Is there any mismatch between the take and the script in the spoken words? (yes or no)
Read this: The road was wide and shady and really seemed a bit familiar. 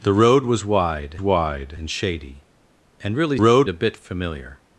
yes